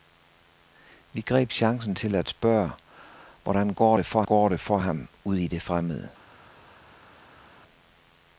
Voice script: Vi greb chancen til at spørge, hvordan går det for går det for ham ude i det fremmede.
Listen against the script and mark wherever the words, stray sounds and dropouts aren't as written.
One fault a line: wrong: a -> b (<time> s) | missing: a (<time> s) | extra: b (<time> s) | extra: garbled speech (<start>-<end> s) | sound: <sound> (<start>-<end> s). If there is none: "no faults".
no faults